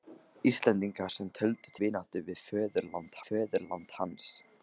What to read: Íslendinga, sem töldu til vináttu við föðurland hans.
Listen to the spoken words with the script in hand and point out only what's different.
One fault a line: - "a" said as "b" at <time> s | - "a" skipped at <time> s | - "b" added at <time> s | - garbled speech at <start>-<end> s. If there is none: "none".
- "til" skipped at 1.7 s
- "föðurland" added at 3.3 s